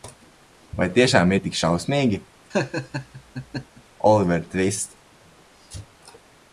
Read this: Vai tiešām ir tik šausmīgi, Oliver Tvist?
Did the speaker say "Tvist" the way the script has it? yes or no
yes